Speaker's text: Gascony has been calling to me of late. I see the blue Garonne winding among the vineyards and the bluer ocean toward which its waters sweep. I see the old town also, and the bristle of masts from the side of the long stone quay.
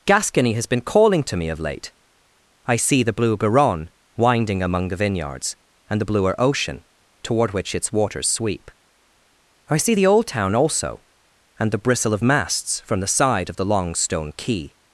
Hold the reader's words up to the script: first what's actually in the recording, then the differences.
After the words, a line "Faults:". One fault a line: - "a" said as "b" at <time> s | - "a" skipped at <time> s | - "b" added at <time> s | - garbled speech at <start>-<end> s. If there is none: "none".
Gascony has been calling to me of late. I see the blue Garonne winding among the vineyards and the bluer ocean toward which its waters sweep. I see the old town also, and the bristle of masts from the side of the long stone quay.
Faults:
none